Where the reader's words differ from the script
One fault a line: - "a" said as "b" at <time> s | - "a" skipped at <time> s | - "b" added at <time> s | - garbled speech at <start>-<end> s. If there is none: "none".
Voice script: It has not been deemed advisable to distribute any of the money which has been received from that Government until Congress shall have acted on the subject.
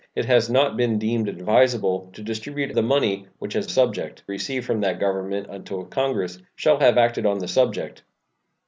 - "any of" skipped at 2.7 s
- "been" said as "subject" at 3.7 s